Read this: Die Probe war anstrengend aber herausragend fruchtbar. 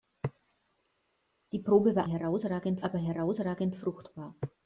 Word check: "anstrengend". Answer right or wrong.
wrong